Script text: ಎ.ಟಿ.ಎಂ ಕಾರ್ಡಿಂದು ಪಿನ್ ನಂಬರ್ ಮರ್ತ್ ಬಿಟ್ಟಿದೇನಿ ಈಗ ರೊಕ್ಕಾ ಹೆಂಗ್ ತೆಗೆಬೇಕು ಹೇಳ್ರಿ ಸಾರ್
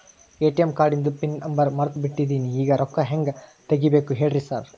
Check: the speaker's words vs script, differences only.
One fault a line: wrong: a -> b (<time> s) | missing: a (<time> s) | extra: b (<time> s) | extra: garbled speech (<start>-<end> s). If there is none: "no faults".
no faults